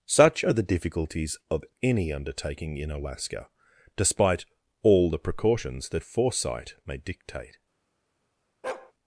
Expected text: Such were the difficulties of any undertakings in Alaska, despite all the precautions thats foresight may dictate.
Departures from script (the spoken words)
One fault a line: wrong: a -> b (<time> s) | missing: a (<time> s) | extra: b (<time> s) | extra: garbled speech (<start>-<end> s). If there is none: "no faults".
wrong: were -> are (0.4 s)
wrong: undertakings -> undertaking (2.1 s)
wrong: thats -> that (5.9 s)